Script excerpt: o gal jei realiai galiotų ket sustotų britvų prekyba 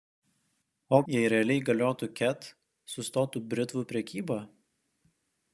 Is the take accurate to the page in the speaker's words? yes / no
no